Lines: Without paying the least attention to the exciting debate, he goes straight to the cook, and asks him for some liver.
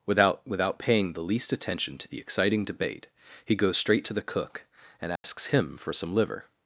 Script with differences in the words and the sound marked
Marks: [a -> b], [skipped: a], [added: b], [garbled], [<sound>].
Without [added: without] paying the least attention to the exciting debate, he goes straight to the cook, and asks [dropout] him for some liver.